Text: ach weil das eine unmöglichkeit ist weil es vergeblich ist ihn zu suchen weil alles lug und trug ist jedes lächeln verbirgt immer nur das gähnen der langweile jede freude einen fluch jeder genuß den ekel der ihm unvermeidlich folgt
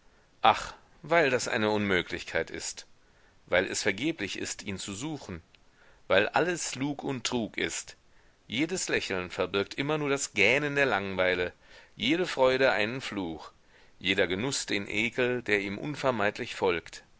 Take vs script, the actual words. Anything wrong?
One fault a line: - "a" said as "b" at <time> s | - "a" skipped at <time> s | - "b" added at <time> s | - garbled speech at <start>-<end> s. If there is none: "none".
none